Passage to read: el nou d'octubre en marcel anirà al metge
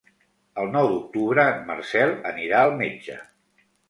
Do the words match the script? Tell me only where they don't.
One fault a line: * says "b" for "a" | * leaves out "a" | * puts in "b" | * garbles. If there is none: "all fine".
all fine